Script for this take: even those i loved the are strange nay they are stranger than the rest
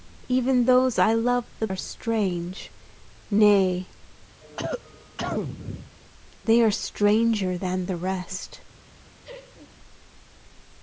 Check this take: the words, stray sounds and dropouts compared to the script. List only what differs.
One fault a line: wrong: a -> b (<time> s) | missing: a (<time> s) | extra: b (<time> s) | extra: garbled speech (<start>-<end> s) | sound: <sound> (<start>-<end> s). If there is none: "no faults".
sound: cough (4.4-5.9 s)
sound: laugh (9.2-9.8 s)